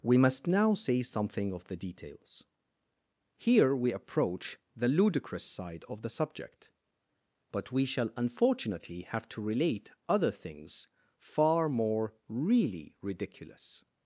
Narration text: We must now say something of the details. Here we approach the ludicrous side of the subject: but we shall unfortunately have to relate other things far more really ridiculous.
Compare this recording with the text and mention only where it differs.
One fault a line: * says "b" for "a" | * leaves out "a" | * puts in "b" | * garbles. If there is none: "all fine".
all fine